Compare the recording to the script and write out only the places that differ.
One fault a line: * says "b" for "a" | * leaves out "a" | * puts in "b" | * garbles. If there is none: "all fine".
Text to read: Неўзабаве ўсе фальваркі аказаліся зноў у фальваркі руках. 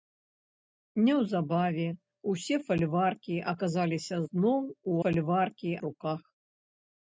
all fine